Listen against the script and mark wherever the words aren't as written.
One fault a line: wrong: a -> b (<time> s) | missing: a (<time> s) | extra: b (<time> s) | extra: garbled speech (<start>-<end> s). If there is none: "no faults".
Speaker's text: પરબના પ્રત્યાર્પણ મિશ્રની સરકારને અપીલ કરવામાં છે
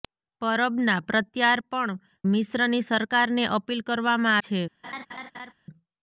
no faults